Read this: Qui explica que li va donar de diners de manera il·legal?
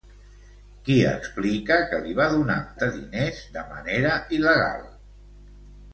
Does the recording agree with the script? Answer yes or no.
yes